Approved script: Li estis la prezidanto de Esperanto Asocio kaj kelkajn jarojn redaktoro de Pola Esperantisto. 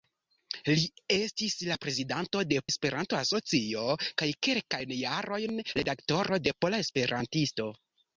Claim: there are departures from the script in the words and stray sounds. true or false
false